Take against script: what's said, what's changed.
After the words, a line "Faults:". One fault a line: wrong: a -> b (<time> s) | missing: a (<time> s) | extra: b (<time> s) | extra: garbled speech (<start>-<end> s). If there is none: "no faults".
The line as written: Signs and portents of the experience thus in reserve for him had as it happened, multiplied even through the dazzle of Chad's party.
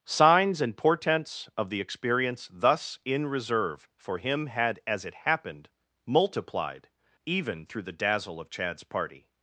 Signs and portents of the experience thus in reserve for him had as it happened, multiplied even through the dazzle of Chad's party.
Faults:
no faults